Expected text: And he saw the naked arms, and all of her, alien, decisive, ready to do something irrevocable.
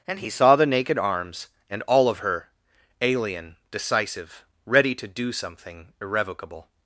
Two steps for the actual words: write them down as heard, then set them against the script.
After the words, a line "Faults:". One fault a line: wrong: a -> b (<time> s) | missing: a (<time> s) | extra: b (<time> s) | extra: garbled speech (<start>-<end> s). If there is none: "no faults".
And he saw the naked arms, and all of her, alien, decisive, ready to do something irrevocable.
Faults:
no faults